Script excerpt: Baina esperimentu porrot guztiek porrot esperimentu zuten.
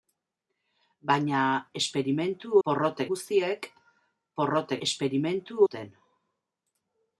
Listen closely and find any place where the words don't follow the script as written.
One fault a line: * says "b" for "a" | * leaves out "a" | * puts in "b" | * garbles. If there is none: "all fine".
all fine